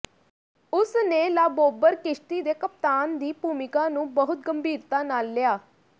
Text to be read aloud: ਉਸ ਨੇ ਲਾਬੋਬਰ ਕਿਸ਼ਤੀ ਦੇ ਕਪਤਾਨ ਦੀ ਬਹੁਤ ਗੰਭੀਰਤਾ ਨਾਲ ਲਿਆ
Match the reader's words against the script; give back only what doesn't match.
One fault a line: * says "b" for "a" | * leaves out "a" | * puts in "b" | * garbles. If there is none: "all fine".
* puts in "ਭੂਮਿਕਾ ਨੂੰ"